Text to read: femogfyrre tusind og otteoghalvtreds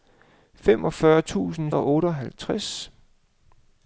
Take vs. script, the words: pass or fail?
pass